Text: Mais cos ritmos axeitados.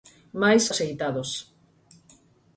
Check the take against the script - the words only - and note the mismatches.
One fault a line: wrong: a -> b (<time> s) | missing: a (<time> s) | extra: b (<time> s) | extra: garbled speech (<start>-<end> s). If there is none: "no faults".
missing: cos ritmos (0.6 s)